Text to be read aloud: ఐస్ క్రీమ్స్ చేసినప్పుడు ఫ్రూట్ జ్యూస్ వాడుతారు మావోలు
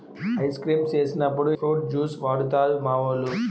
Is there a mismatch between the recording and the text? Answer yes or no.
no